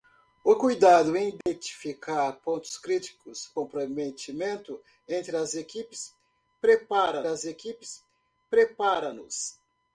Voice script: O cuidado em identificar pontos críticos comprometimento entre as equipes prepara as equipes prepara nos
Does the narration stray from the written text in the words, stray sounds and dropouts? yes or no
yes